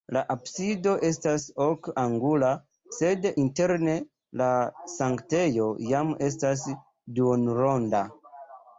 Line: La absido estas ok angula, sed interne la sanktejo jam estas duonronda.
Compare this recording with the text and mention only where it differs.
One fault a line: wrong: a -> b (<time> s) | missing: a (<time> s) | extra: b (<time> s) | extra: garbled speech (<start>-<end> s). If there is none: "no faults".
no faults